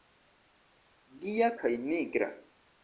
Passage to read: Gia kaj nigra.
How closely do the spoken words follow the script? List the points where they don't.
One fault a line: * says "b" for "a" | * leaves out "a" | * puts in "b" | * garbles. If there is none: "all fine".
all fine